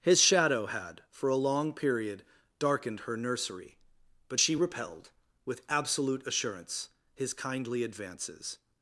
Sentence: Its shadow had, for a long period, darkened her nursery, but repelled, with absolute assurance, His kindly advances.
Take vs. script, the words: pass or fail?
fail